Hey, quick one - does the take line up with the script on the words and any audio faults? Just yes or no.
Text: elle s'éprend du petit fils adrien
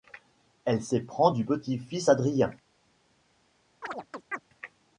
no